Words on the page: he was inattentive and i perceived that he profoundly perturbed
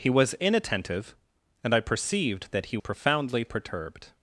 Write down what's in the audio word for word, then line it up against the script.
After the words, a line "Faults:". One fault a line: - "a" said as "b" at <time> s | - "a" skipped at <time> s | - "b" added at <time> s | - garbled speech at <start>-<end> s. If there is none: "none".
he was inattentive and i perceived that he profoundly perturbed
Faults:
none